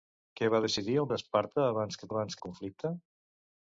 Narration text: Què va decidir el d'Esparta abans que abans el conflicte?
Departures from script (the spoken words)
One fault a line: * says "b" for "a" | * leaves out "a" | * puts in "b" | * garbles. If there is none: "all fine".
all fine